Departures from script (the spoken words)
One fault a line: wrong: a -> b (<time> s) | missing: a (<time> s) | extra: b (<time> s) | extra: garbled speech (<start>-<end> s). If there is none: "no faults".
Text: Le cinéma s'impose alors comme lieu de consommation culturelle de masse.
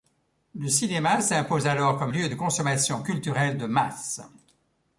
no faults